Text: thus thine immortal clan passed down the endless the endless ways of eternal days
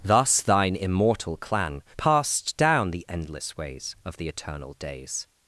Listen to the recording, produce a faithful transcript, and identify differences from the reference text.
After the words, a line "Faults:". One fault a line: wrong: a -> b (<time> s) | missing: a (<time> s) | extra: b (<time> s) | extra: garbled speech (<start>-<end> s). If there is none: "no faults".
thus thine immortal clan passed down the endless ways of the eternal days
Faults:
missing: the endless (3.6 s)
extra: the (4.2 s)